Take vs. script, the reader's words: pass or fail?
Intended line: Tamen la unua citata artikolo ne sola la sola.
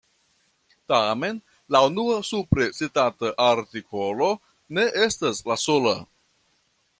fail